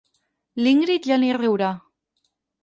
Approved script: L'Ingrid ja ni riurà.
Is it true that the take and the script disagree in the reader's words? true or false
false